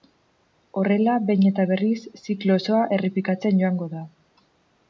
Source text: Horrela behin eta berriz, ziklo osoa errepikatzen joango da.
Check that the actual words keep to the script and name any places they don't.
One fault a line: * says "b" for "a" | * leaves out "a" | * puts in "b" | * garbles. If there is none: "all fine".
all fine